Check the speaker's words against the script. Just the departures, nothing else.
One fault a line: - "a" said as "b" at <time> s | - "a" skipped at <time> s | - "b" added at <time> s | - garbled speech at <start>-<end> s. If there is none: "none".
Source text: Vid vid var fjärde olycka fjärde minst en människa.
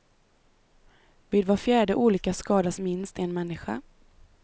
- "vid" skipped at 1.4 s
- "fjärde" said as "skadas" at 2.3 s